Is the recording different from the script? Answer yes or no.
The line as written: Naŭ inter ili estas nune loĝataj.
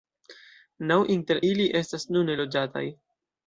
no